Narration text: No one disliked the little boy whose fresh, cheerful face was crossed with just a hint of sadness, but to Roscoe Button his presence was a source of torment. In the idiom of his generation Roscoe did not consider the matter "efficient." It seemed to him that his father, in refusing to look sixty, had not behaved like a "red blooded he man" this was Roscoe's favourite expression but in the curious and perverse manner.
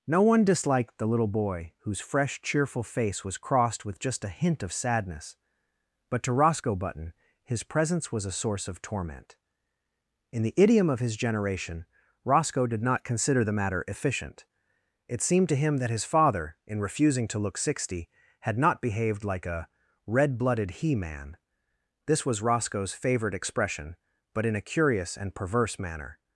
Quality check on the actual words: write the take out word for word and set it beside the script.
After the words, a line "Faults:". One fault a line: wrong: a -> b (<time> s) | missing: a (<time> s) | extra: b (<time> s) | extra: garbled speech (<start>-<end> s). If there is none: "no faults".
No one disliked the little boy whose fresh, cheerful face was crossed with just a hint of sadness, but to Roscoe Button his presence was a source of torment. In the idiom of his generation Roscoe did not consider the matter "efficient." It seemed to him that his father, in refusing to look sixty, had not behaved like a "red blooded he man" this was Roscoe's favourite expression but in a curious and perverse manner.
Faults:
wrong: the -> a (24.6 s)